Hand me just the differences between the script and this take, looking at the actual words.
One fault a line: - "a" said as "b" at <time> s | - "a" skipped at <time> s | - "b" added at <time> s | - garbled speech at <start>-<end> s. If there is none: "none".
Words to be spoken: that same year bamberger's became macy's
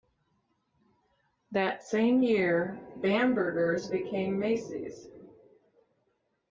none